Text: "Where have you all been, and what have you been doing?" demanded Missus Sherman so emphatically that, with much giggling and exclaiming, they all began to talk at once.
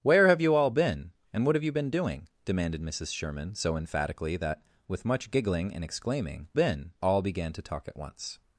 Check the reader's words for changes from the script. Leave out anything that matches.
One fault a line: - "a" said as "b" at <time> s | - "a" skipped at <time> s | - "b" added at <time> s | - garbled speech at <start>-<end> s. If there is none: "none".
- "they" said as "been" at 6.5 s